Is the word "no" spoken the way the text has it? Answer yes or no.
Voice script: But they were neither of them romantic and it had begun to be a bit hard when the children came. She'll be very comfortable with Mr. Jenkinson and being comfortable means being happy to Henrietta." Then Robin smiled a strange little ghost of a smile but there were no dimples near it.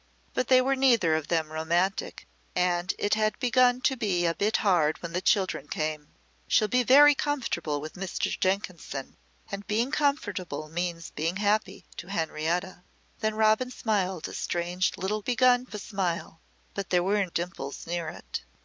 no